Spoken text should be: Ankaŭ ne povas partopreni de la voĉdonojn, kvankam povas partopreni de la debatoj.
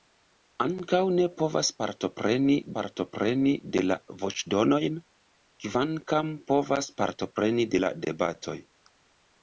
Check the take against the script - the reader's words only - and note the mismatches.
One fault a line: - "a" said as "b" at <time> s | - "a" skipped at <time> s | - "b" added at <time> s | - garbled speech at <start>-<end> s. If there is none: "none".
- "partopreni" added at 2.8 s